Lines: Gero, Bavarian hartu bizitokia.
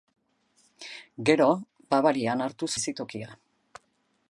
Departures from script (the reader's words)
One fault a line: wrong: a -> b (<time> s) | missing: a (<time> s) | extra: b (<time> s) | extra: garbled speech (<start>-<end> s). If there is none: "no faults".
no faults